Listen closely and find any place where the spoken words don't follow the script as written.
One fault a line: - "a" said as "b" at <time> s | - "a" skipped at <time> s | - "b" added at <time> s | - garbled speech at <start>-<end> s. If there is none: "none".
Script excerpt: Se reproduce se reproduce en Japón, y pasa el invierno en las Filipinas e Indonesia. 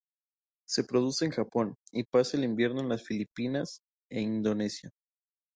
- "se reproduce" skipped at 1.2 s